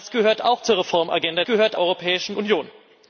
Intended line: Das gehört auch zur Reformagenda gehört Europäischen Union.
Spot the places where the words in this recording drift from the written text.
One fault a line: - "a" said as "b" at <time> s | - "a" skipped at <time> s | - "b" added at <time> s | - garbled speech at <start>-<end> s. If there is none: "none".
none